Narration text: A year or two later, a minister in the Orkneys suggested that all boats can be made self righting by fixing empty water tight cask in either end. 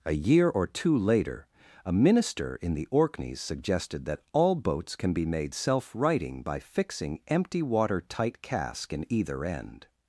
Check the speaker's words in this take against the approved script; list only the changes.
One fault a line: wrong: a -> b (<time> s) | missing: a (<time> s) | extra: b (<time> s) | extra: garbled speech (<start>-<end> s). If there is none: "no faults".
no faults